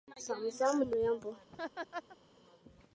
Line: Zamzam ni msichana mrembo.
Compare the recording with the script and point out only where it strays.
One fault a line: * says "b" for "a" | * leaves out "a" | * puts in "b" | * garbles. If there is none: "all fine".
* leaves out "ni msichana"